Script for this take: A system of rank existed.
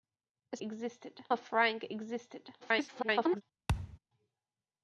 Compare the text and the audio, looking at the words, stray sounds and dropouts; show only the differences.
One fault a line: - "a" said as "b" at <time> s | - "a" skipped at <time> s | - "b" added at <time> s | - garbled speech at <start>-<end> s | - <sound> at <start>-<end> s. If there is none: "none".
- "system" said as "existed" at 0.6 s
- garbled speech at 2.6-3.4 s
- thud at 3.7-4.0 s